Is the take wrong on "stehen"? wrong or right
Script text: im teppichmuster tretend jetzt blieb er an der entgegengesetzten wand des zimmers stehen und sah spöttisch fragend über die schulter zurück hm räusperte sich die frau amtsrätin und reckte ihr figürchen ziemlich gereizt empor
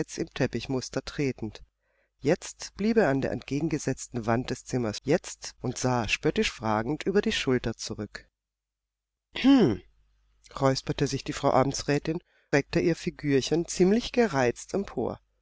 wrong